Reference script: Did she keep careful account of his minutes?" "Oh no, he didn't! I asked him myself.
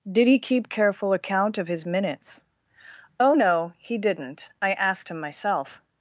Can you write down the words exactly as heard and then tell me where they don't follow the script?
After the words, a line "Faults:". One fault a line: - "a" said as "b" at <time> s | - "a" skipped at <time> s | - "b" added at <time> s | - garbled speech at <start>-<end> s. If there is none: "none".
Did he keep careful account of his minutes?" "Oh no, he didn't! I asked him myself.
Faults:
- "she" said as "he" at 0.3 s